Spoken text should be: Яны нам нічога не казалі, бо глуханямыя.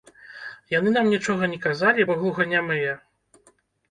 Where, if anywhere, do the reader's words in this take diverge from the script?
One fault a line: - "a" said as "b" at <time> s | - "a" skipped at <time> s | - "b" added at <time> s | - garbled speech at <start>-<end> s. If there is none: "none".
none